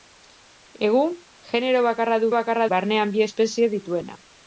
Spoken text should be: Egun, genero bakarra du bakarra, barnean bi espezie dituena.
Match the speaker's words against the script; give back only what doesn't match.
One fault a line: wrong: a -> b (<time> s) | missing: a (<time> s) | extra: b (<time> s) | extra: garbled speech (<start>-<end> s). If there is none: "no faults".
no faults